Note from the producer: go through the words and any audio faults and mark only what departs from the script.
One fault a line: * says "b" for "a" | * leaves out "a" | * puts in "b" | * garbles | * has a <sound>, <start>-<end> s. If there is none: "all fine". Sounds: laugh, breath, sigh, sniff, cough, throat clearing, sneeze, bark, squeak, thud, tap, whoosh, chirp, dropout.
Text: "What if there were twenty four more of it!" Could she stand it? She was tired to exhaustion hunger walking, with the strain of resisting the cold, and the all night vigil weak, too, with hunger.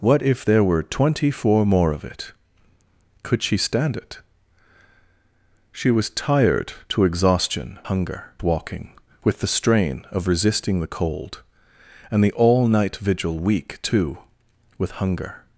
all fine